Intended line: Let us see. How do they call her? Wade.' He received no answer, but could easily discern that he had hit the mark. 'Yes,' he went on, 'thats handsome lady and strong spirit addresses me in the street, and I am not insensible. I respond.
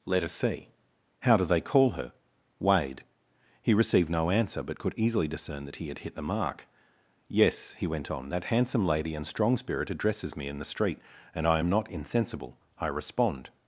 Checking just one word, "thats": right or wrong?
wrong